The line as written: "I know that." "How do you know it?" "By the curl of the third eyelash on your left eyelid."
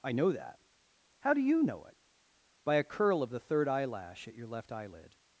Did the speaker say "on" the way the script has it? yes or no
no